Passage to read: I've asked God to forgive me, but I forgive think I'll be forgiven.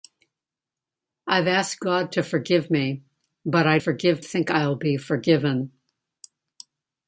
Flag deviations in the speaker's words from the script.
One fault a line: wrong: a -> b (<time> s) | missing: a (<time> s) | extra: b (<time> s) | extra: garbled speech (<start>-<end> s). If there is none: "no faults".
no faults